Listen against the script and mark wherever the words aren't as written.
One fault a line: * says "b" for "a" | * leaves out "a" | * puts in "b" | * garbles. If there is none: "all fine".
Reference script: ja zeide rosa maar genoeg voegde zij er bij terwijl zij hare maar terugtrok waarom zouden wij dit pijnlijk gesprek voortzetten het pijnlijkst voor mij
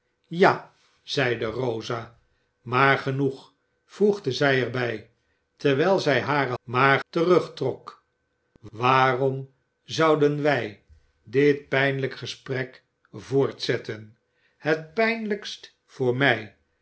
all fine